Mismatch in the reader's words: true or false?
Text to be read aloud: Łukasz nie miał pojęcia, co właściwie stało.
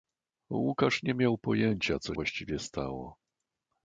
false